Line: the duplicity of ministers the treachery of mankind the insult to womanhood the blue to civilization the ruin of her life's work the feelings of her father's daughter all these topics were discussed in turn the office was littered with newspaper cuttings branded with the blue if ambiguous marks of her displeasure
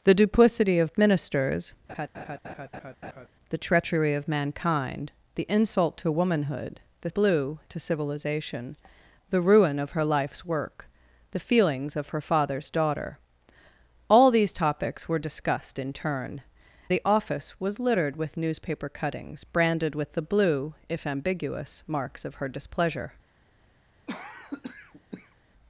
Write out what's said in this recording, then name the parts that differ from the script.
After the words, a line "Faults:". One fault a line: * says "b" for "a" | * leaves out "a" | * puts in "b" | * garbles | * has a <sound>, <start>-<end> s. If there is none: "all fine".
the duplicity of ministers the treachery of mankind the insult to womanhood the blue to civilization the ruin of her life's work the feelings of her father's daughter all these topics were discussed in turn the office was littered with newspaper cuttings branded with the blue if ambiguous marks of her displeasure
Faults:
* has a laugh, 1.9-3.3 s
* has a cough, 24.1-25.4 s